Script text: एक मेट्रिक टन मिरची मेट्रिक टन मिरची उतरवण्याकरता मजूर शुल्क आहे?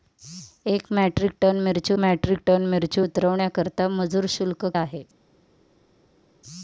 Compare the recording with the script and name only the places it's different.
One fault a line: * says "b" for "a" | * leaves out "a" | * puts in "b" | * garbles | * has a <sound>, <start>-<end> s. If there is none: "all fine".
all fine